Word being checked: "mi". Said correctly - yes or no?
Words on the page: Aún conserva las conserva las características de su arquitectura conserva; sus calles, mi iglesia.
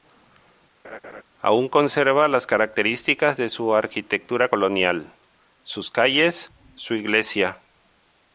no